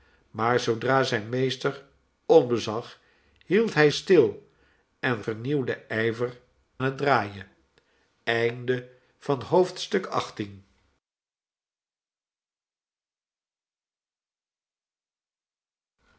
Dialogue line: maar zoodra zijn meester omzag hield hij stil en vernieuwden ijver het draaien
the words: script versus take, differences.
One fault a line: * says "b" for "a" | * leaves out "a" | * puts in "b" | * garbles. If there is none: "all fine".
all fine